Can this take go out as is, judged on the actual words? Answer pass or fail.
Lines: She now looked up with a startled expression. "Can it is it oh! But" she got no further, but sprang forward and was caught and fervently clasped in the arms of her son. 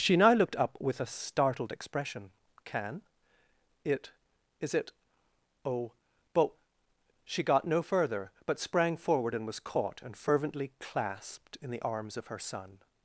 pass